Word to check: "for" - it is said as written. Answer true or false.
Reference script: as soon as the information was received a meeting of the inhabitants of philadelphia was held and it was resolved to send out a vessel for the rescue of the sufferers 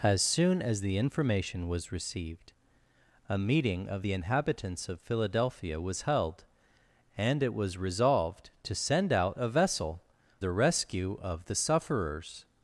false